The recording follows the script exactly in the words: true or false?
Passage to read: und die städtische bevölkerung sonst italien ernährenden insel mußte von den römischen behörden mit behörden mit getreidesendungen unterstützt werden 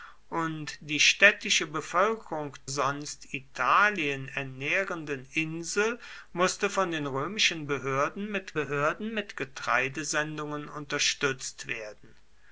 true